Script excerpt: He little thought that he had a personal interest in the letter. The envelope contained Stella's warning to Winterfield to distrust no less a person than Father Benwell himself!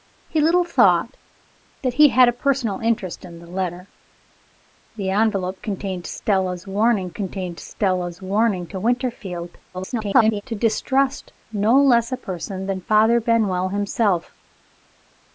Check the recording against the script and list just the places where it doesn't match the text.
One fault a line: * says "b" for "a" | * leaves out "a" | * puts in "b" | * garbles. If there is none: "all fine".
* puts in "contained Stella's warning"
* garbles